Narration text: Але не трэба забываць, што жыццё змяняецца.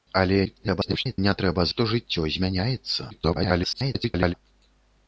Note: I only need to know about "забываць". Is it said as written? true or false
false